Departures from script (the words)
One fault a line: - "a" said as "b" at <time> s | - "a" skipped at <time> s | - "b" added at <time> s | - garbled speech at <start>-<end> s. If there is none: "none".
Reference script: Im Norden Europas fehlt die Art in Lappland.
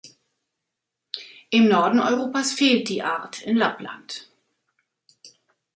none